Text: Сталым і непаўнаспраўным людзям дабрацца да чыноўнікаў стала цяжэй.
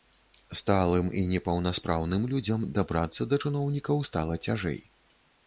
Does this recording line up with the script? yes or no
yes